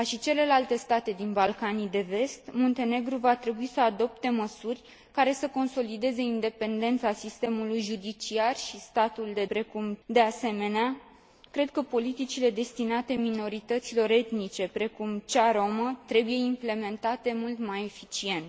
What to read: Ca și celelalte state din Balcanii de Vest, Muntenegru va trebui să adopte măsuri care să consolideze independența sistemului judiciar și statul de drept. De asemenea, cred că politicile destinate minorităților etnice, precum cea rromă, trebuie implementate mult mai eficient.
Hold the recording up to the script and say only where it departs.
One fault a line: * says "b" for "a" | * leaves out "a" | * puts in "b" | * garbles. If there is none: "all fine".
* says "precum" for "drept"